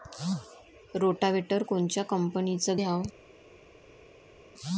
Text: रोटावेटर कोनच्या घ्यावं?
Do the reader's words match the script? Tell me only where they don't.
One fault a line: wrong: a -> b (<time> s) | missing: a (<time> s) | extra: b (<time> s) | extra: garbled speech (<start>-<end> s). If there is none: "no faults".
extra: कंपनीचं (2.0 s)